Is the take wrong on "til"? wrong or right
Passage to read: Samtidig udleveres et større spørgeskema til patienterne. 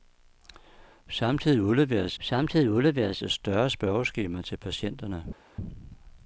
right